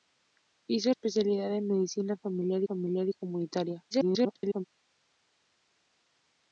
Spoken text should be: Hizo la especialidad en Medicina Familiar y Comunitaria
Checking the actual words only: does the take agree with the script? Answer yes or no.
no